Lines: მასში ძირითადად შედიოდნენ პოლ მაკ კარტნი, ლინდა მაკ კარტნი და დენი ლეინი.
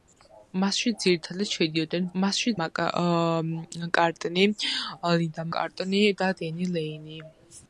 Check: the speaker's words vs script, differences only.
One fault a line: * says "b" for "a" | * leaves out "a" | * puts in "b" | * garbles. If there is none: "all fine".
* says "მასში" for "პოლ"
* leaves out "მაკ"